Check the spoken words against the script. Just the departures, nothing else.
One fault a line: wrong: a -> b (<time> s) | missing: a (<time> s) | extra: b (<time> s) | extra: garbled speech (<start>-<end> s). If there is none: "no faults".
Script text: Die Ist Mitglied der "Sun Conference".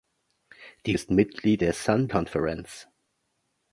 no faults